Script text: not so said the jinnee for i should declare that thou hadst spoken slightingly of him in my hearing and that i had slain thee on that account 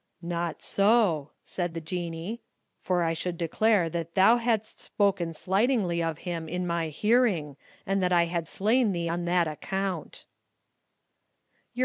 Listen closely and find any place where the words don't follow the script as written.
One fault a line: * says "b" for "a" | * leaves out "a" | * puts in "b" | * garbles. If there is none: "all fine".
all fine